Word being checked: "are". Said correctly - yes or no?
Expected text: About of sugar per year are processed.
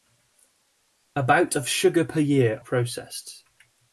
no